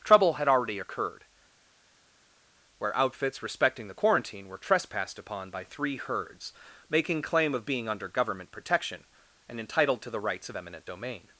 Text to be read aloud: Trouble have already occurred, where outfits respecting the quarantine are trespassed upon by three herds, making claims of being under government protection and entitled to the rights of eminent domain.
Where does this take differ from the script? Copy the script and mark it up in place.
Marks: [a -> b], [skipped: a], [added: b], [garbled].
Trouble [have -> had] already occurred, where outfits respecting the quarantine [are -> were] trespassed upon by three herds, making [claims -> claim] of being under government protection and entitled to the rights of eminent domain.